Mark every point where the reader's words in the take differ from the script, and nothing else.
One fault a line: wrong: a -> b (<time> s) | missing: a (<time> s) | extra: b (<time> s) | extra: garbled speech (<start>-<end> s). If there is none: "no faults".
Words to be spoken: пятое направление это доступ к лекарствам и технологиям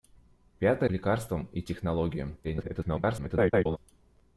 missing: направление это доступ (0.9 s)
extra: garbled speech (2.4-3.8 s)